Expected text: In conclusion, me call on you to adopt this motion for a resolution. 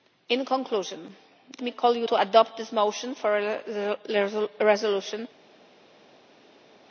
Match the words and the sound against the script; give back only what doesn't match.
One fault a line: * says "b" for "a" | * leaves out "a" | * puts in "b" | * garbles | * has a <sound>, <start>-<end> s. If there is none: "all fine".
all fine